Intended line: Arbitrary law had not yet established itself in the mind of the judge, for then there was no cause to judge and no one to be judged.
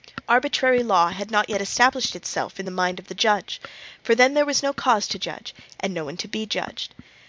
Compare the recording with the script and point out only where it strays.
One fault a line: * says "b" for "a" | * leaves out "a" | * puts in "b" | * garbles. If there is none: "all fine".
all fine